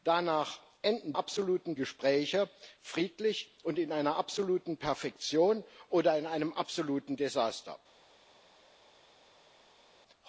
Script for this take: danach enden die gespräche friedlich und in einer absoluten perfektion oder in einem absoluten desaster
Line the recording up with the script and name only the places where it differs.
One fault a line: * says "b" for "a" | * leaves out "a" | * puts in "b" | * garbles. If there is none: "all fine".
* says "absoluten" for "die"